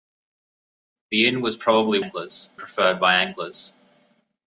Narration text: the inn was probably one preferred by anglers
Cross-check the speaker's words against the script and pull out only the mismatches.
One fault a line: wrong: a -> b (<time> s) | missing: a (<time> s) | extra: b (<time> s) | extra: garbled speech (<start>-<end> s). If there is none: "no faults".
wrong: one -> anglers (2.0 s)